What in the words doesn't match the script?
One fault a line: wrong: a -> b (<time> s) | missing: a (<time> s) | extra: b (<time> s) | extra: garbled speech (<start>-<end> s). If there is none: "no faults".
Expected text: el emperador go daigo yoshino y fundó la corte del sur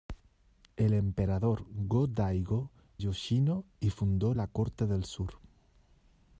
no faults